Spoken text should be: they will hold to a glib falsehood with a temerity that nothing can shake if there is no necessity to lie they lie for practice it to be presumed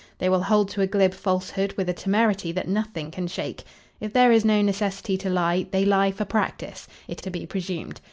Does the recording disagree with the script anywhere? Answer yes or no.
no